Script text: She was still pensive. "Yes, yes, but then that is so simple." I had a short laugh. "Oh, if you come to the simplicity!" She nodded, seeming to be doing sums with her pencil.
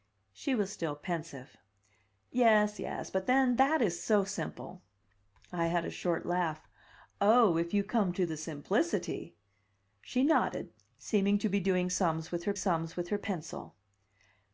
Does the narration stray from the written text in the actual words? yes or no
yes